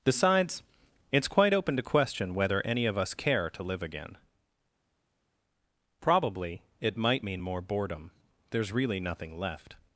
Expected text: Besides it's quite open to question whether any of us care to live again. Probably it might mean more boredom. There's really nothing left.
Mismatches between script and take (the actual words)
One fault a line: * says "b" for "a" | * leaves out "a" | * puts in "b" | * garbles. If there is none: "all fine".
all fine